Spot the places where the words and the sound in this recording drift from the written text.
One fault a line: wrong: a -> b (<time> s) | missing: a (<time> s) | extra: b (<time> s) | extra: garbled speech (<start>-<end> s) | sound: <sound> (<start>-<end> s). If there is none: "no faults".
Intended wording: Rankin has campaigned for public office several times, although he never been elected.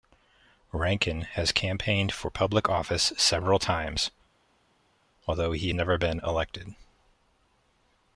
no faults